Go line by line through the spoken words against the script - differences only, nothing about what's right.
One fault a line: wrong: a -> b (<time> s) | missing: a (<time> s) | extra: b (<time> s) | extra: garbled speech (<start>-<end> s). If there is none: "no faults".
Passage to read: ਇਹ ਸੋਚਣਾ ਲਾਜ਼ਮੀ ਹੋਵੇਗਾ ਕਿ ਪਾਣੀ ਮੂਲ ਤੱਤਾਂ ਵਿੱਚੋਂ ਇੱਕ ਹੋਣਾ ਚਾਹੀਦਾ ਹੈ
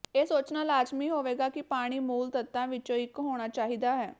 no faults